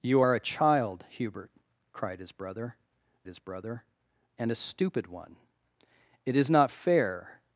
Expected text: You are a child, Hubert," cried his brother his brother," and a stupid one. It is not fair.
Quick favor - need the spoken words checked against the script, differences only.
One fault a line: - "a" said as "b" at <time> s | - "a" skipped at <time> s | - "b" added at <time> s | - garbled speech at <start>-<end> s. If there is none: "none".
none